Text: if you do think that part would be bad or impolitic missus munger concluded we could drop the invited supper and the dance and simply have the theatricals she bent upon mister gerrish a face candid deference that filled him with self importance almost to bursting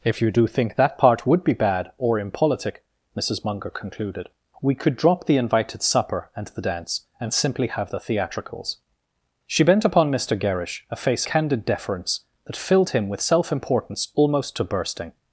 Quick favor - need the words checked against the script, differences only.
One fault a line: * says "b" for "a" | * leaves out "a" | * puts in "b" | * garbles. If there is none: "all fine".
all fine